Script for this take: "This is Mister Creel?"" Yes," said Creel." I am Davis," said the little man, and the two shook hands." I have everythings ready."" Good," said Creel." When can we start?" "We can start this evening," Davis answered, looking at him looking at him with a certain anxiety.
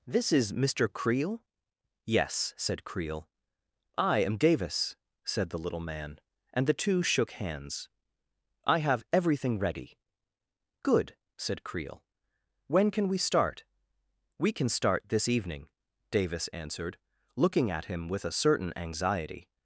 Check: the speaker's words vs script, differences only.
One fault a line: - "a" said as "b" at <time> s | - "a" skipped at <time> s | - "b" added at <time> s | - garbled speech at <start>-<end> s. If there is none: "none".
- "everythings" said as "everything" at 9.1 s
- "looking at him" skipped at 18.1 s